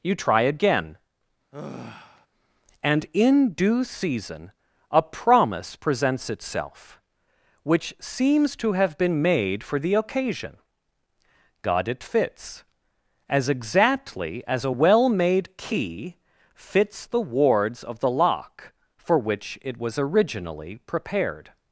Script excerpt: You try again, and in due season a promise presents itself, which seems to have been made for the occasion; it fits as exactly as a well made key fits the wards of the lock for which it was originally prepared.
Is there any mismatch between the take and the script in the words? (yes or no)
yes